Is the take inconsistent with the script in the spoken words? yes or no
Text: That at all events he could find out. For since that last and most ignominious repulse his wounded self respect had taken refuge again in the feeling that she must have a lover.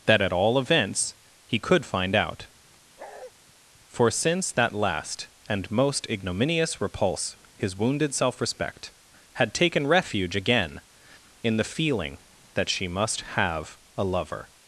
no